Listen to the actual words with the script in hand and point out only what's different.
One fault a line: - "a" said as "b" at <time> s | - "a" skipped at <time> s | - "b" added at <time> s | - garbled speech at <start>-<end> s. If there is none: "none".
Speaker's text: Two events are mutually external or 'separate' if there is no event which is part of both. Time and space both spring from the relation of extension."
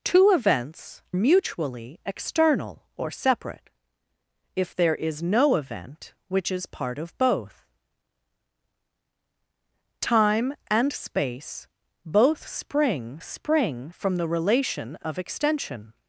- "are" skipped at 1.0 s
- "spring" added at 13.2 s